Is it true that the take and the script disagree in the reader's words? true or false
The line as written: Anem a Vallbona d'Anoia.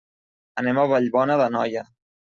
false